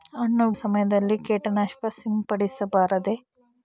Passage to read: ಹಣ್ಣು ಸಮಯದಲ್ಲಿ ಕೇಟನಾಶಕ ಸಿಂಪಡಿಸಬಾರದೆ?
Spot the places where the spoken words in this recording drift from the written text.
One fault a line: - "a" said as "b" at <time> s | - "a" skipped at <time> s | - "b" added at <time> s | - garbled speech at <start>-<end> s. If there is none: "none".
none